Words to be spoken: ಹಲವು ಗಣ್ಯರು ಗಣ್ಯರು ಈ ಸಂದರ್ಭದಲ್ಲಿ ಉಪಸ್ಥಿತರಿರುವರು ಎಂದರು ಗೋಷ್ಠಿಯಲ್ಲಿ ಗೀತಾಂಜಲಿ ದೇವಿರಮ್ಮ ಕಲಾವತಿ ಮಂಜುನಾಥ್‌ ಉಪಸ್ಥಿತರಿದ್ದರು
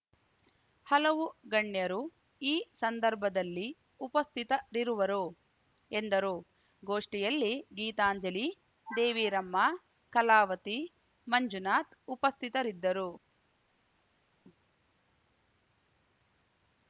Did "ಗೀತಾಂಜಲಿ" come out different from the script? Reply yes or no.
no